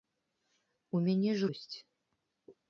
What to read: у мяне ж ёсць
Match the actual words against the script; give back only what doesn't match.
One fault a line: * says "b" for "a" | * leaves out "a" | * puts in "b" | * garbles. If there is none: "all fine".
all fine